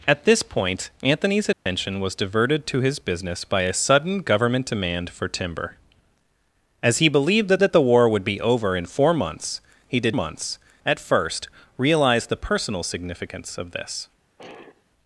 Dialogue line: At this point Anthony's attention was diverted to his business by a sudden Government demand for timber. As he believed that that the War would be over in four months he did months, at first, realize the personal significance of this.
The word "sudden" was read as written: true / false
true